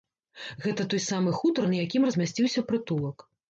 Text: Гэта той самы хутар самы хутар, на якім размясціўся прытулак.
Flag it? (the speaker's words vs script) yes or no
yes